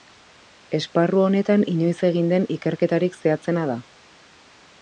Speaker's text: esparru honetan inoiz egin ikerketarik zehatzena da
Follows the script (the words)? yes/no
no